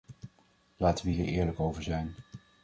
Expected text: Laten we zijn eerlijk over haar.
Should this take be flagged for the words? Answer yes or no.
yes